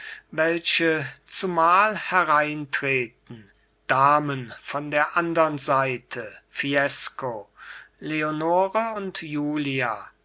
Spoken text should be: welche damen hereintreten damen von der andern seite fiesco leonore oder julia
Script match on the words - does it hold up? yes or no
no